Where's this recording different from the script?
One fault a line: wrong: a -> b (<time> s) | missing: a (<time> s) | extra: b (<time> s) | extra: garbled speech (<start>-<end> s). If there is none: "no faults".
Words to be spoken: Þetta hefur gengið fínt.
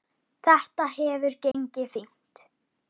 no faults